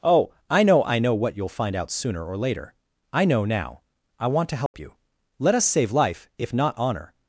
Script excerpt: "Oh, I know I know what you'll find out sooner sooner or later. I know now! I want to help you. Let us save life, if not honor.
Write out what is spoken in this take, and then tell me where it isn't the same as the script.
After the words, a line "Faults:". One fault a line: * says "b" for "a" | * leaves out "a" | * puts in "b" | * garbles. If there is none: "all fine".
"Oh, I know I know what you'll find out sooner or later. I know now! I want to help you. Let us save life, if not honor.
Faults:
* leaves out "sooner"